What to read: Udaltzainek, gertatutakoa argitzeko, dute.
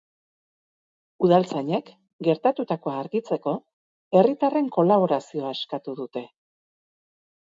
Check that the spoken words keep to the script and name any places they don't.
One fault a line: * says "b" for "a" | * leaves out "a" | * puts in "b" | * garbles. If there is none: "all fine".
* puts in "herritarren kolaborazioa eskatu"